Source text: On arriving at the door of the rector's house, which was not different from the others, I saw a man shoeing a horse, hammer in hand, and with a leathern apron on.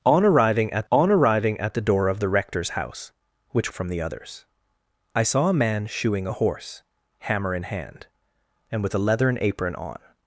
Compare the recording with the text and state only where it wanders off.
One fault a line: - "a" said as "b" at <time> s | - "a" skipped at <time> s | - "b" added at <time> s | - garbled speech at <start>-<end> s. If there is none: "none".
- "on arriving at" added at 0.9 s
- "was not different" skipped at 3.7 s